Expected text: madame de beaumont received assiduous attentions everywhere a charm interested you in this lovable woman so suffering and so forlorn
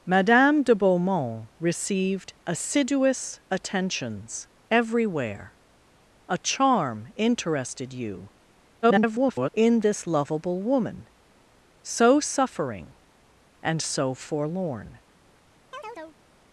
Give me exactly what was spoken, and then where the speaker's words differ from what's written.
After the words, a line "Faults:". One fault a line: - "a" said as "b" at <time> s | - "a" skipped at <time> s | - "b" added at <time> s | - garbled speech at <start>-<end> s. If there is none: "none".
madame de beaumont received assiduous attentions everywhere a charm interested you [garbled] in this lovable woman so suffering and so forlorn
Faults:
- garbled speech at 8.8-9.5 s